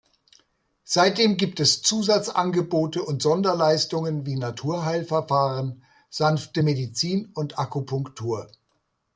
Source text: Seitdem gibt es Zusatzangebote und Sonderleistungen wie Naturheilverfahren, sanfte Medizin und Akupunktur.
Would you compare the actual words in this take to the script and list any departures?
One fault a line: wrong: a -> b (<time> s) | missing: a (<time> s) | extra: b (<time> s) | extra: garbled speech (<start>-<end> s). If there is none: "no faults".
no faults